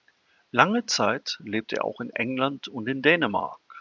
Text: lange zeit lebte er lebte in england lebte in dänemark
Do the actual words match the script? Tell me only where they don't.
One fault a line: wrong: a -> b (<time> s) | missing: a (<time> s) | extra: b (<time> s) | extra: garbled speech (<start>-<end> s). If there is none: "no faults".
wrong: lebte -> auch (1.8 s)
wrong: lebte -> und (2.7 s)